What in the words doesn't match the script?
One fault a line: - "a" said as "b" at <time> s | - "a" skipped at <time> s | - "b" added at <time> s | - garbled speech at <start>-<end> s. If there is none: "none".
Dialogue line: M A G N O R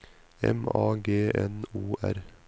none